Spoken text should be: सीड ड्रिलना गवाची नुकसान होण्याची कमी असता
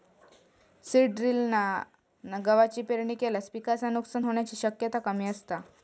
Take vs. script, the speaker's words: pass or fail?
fail